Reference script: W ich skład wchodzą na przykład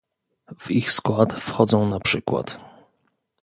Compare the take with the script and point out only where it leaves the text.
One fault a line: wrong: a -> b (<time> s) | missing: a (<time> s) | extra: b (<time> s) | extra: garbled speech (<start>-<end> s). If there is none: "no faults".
no faults